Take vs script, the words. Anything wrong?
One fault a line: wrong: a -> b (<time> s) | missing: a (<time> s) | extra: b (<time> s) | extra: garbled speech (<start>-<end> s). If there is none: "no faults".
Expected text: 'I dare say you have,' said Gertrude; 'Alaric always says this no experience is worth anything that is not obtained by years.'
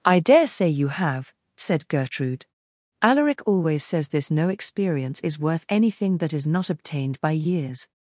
no faults